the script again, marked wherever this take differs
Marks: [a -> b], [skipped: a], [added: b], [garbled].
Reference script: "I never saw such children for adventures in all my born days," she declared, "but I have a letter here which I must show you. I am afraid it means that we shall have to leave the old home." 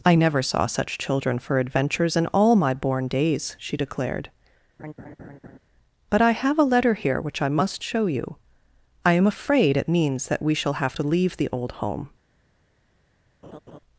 "I never saw such children for adventures in all my born days," she declared, "but I have a letter here which I must show you. I am afraid it means that we shall have to leave the old home."